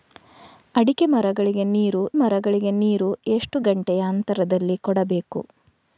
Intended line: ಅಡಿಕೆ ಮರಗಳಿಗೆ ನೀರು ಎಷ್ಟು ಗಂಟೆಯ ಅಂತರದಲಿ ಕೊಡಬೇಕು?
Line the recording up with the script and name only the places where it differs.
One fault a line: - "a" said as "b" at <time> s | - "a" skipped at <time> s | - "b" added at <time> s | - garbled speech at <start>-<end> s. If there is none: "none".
- "ಮರಗಳಿಗೆ ನೀರು" added at 2.1 s